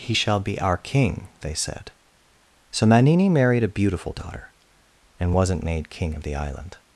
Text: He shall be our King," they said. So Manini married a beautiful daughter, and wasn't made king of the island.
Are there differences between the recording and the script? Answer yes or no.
no